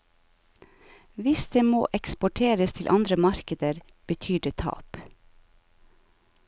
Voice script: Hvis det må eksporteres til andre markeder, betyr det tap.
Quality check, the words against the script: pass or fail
pass